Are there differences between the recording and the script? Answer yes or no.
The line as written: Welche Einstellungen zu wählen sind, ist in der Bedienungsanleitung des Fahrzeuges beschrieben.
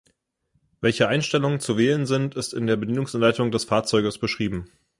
no